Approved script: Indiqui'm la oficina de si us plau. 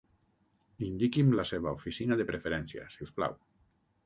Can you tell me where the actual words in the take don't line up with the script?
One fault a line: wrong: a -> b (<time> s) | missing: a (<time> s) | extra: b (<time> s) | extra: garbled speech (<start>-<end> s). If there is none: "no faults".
extra: seva (1.5 s)
extra: preferència (2.3 s)